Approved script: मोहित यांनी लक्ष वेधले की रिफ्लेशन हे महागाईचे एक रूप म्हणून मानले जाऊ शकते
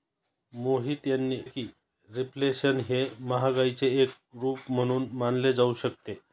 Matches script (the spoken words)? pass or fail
fail